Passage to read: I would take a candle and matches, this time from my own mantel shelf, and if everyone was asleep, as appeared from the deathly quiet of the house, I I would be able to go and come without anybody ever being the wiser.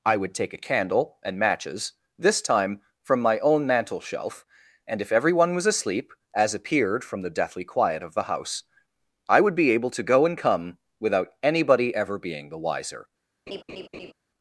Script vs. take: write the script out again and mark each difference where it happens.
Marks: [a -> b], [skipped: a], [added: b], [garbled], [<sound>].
I would take a candle and matches, this time from my own mantel shelf, and if everyone was asleep, as appeared from the deathly quiet of the house, I [skipped: I] would be able to go and come without anybody ever being the wiser. [laugh]